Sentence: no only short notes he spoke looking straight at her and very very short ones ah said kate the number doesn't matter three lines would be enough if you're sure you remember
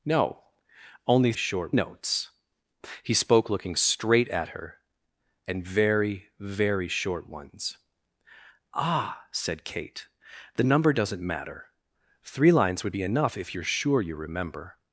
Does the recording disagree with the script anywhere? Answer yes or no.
no